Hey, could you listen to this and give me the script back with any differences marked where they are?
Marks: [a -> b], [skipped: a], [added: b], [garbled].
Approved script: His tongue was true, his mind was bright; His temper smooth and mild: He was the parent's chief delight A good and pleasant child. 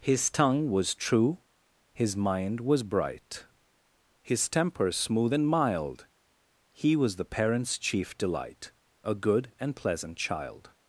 His tongue was true, his mind was bright; His temper smooth and mild: He was the parent's chief delight A good and pleasant child.